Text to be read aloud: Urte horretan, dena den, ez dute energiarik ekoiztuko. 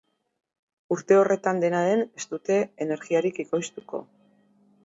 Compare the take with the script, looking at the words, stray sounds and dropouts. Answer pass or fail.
pass